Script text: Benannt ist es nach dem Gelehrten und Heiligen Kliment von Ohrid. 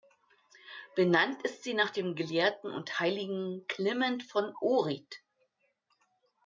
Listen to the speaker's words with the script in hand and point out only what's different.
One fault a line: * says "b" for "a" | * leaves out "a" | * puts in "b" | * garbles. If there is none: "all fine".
* says "sie" for "es"